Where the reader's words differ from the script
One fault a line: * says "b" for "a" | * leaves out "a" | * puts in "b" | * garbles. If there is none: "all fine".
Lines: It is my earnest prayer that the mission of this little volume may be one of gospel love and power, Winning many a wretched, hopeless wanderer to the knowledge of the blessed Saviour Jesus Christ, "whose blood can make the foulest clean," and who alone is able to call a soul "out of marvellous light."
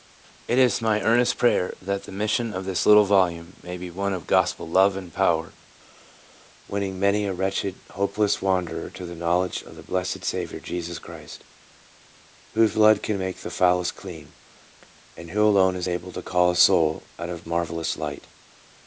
all fine